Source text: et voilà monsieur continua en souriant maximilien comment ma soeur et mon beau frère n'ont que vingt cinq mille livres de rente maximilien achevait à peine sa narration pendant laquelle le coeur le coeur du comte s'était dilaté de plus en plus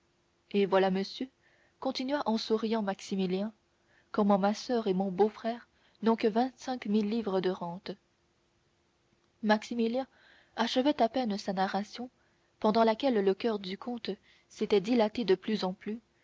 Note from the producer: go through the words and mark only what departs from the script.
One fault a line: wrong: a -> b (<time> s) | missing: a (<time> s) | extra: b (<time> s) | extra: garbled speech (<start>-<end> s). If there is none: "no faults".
missing: le coeur (13.6 s)